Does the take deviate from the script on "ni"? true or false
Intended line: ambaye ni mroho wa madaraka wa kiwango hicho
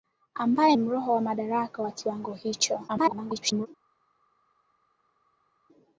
true